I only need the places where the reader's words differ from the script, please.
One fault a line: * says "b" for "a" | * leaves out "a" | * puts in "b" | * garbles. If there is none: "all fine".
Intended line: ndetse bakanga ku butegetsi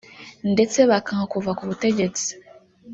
* puts in "kuva"